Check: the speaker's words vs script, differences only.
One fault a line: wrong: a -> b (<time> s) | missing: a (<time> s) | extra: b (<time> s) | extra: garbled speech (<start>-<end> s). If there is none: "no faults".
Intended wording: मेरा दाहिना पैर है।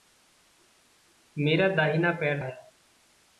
no faults